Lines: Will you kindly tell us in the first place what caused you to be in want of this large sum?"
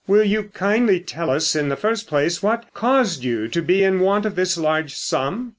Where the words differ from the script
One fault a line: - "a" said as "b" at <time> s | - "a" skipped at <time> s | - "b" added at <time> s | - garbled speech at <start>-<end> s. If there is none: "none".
none